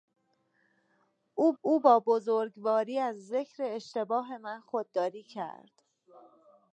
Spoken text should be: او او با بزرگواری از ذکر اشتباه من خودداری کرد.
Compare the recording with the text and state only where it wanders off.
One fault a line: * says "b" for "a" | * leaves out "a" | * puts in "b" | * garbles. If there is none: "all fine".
all fine